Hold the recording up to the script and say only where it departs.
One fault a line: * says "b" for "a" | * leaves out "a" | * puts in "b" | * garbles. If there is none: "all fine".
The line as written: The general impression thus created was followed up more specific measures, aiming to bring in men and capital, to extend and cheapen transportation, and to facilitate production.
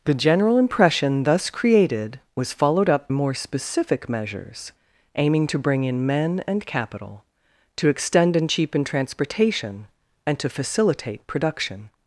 all fine